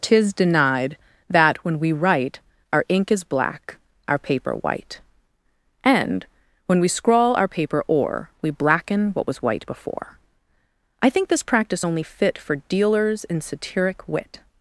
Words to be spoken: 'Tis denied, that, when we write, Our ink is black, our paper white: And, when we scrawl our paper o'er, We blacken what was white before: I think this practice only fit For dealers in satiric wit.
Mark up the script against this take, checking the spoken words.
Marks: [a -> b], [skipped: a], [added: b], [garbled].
'Tis denied, that, when we write, Our ink is black, our paper white: And, when we scrawl our paper o'er, We blacken what was white before: I think this practice only fit For dealers in satiric wit.